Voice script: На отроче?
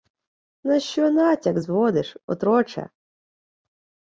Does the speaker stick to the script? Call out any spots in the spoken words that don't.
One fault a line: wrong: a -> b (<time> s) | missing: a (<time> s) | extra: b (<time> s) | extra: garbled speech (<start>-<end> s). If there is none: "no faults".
extra: що натяк зводиш (0.8 s)